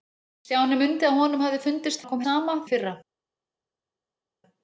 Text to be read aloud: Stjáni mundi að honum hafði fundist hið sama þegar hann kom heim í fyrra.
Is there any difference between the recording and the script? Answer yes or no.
yes